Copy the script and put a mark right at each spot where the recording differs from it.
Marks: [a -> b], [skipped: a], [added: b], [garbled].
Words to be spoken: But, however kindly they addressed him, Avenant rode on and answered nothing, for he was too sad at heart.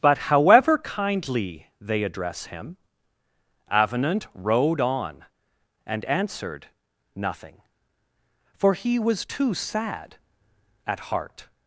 But, however kindly they [addressed -> address] him, Avenant rode on and answered nothing, for he was too sad at heart.